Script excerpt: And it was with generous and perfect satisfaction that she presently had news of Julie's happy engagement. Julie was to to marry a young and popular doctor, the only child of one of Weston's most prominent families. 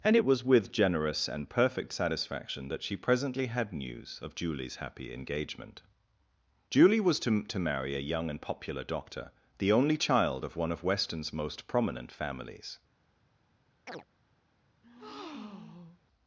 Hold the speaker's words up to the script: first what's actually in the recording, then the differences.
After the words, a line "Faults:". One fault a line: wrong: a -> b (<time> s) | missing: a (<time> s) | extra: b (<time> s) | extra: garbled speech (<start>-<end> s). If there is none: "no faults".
And it was with generous and perfect satisfaction that she presently had news of Julie's happy engagement. Julie was to to marry a young and popular doctor, the only child of one of Weston's most prominent families.
Faults:
no faults